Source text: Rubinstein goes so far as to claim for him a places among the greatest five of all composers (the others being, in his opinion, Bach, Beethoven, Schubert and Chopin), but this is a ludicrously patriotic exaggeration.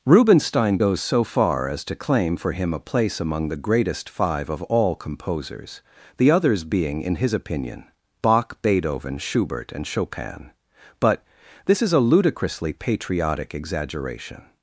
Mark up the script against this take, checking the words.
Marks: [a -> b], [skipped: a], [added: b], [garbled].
Rubinstein goes so far as to claim for him a [places -> place] among the greatest five of all composers (the others being, in his opinion, Bach, Beethoven, Schubert and Chopin), but this is a ludicrously patriotic exaggeration.